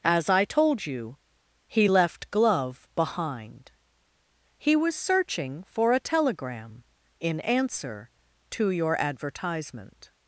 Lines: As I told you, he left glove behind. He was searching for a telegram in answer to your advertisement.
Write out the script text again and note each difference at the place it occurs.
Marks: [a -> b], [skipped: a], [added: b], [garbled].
As I told you, he left glove behind. He was searching for a telegram in answer to your advertisement.